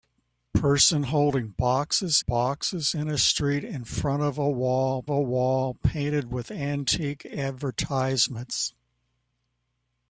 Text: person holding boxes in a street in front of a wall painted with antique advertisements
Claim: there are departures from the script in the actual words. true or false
true